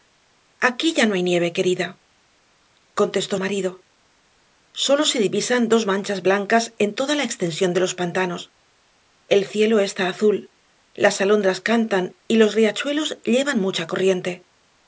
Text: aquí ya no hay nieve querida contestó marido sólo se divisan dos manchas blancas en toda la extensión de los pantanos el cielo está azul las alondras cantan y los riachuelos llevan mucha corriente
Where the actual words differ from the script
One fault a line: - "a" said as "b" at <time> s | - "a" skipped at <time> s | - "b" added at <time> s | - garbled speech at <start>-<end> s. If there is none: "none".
none